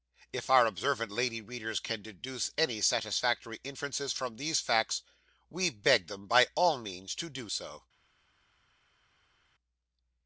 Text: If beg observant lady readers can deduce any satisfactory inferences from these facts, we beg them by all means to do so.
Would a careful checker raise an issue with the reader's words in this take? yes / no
yes